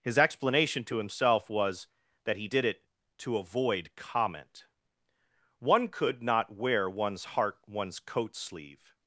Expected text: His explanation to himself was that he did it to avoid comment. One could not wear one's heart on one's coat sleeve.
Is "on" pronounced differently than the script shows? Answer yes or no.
yes